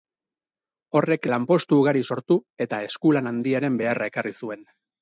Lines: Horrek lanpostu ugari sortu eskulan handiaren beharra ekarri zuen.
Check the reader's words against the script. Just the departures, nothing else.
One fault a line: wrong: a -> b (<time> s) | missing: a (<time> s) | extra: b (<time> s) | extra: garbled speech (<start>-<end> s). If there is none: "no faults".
extra: eta (2.7 s)